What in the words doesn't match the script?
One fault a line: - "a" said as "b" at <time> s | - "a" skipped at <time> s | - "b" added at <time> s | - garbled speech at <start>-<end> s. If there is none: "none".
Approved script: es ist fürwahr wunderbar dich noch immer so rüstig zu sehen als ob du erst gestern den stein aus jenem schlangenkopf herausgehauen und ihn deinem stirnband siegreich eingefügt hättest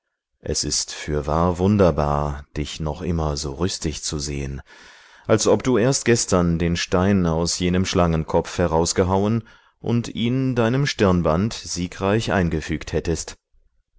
none